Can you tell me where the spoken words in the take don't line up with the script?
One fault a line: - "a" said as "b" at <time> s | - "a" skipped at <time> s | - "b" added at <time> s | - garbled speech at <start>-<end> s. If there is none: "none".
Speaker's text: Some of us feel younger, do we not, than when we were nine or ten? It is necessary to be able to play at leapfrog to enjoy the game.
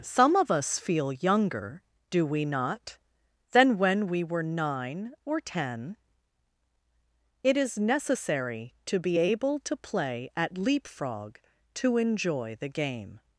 none